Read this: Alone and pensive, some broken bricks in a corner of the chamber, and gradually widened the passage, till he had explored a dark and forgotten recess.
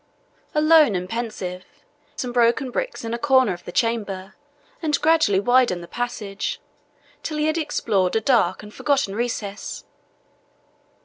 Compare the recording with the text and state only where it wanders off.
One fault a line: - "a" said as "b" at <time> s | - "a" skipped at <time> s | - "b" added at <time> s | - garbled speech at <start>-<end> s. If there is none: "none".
none